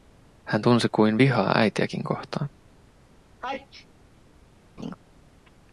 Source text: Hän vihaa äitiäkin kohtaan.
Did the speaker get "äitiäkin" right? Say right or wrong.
right